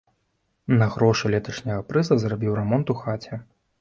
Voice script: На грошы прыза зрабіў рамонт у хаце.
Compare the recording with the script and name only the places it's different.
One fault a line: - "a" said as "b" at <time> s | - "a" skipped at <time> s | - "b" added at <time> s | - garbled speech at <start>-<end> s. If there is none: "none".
- "леташняга" added at 1.4 s